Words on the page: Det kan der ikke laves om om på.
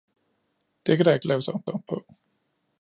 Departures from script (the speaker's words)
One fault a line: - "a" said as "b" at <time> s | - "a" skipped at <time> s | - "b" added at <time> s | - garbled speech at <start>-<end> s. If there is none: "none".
none